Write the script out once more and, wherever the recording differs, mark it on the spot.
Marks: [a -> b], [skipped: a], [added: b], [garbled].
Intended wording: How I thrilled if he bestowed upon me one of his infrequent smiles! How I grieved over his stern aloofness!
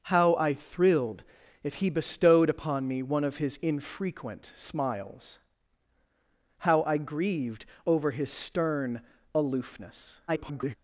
How I thrilled if he bestowed upon me one of his infrequent smiles! How I grieved over his stern aloofness! [garbled]